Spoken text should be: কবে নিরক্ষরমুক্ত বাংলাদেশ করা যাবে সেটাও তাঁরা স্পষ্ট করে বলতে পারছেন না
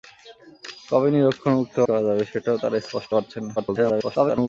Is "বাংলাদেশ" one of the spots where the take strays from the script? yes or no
yes